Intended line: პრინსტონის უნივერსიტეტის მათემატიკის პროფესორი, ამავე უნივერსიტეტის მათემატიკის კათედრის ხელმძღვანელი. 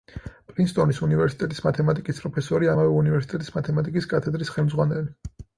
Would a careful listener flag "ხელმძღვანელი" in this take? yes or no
no